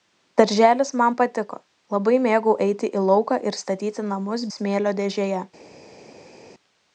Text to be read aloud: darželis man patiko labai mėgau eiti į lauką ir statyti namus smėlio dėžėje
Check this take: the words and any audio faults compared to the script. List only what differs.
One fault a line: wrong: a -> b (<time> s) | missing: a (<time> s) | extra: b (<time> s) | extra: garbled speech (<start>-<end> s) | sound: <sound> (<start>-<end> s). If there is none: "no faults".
no faults